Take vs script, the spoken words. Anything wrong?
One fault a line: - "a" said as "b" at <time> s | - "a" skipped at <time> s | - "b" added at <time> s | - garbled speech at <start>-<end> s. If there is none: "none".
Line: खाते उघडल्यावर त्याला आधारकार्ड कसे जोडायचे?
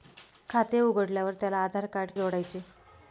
- "कसे" skipped at 2.1 s